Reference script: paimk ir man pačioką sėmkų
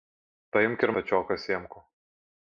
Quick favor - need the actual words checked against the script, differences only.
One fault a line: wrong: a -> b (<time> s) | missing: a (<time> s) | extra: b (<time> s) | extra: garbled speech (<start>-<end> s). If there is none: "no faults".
missing: man (0.9 s)